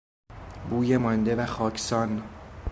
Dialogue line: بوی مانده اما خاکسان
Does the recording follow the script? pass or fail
fail